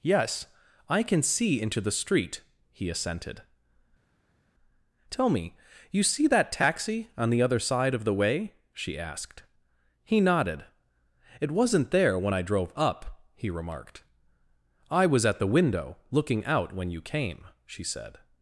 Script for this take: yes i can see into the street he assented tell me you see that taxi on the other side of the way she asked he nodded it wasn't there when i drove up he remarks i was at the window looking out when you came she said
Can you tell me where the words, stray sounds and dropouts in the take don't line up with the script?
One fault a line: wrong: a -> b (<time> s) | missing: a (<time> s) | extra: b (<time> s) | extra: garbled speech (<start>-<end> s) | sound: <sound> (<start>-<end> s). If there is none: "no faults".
wrong: remarks -> remarked (13.5 s)